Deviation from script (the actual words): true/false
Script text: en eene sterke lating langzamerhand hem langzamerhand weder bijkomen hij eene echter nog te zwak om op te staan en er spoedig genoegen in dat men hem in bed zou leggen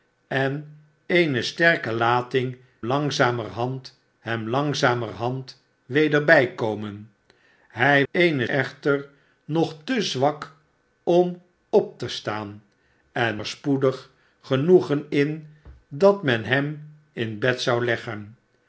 false